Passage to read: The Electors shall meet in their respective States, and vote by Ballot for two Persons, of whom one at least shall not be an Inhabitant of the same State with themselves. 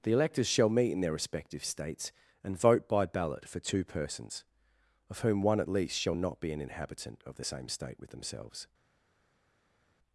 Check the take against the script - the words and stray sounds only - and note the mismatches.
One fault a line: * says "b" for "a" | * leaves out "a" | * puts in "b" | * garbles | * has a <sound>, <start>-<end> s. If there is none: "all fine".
all fine